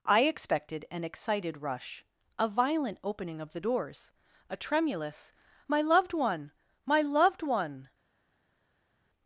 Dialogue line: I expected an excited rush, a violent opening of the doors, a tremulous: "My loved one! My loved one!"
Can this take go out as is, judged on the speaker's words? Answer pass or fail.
pass